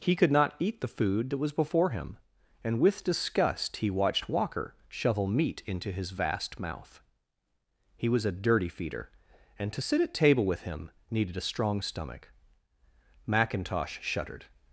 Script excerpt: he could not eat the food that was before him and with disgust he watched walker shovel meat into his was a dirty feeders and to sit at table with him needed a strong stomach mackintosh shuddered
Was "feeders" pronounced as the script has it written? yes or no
no